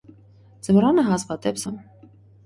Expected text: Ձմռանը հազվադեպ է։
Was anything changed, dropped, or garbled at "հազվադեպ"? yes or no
no